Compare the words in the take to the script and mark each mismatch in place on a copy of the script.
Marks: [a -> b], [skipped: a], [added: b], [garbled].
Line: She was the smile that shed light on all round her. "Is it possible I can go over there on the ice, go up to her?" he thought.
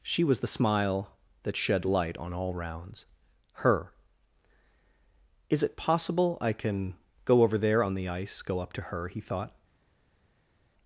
She was the smile that shed light on all [round -> rounds] her. "Is it possible I can go over there on the ice, go up to her?" he thought.